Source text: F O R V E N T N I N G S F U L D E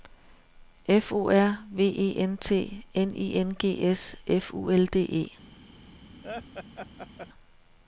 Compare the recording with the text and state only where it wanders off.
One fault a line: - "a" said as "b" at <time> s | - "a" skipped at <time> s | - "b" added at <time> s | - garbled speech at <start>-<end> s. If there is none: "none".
none